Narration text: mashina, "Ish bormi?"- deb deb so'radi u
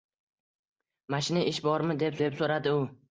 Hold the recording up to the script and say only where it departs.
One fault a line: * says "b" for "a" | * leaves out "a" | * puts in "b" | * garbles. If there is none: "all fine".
all fine